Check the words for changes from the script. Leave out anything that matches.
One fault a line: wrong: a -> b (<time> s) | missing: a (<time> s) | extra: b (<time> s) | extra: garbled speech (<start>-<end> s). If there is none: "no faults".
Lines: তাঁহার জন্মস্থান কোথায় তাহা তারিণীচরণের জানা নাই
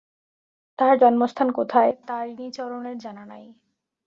missing: তাহা (1.9 s)